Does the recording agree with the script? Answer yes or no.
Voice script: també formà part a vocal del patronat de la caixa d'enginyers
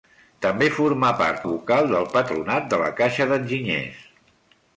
yes